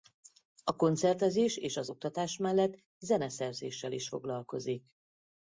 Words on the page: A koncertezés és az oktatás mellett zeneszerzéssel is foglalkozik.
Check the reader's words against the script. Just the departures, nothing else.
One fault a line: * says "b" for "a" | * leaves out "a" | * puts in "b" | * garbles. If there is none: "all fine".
all fine